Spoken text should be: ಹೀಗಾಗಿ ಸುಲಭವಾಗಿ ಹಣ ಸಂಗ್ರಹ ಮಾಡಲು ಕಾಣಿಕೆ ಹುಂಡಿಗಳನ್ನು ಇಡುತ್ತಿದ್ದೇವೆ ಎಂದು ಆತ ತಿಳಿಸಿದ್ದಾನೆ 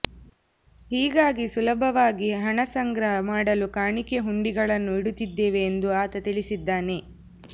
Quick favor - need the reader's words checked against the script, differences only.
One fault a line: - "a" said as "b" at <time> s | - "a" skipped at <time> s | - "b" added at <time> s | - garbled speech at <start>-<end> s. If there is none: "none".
none